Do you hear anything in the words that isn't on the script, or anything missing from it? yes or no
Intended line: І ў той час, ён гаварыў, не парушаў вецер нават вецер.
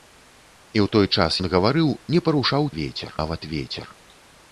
no